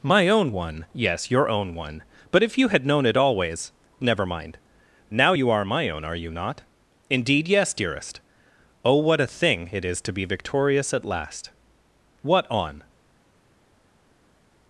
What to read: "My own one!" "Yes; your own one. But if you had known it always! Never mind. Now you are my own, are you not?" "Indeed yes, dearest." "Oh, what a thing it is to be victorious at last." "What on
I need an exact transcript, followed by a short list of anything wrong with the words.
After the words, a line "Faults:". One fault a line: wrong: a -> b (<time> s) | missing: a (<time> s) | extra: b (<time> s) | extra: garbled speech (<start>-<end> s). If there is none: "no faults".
"My own one!" "Yes; your own one. But if you had known it always! Never mind. Now you are my own, are you not?" "Indeed yes, dearest." "Oh, what a thing it is to be victorious at last." "What on
Faults:
no faults